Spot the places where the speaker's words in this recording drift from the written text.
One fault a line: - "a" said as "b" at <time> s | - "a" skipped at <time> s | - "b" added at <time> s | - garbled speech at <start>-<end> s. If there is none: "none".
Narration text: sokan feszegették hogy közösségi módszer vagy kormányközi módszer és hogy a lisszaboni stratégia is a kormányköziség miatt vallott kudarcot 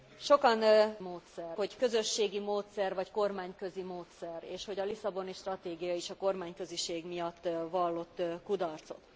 - "feszegették" said as "módszer" at 1.0 s